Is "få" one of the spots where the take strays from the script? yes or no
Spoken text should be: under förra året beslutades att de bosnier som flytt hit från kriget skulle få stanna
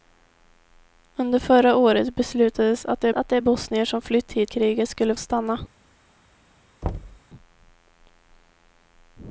yes